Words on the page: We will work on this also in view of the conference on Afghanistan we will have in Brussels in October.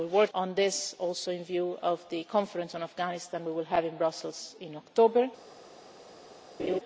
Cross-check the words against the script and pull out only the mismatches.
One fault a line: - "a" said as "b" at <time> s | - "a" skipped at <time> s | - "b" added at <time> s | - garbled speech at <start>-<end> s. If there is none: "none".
none